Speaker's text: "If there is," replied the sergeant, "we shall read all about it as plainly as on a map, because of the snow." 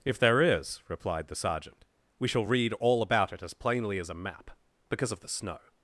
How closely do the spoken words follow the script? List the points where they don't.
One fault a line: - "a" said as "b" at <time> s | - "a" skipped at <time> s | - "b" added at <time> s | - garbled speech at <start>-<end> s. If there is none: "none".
- "on" skipped at 4.1 s